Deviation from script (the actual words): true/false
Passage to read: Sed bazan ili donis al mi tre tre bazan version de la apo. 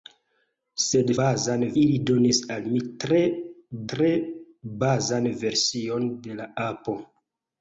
false